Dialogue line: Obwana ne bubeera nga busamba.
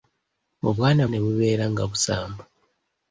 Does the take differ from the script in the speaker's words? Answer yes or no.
no